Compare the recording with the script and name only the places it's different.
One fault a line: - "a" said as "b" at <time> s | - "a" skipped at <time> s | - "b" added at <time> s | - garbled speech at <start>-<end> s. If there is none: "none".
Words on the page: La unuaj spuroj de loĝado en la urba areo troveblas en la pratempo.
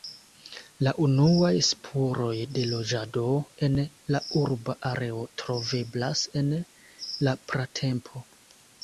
none